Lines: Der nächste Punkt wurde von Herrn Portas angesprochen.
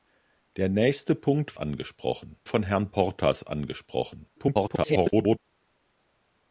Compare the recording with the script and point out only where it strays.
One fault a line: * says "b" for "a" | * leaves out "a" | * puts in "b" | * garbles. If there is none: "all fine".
* says "angesprochen" for "wurde"
* garbles